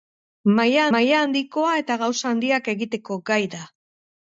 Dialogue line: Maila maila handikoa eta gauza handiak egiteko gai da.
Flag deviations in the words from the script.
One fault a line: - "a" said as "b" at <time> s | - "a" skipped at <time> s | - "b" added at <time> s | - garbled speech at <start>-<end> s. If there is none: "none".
none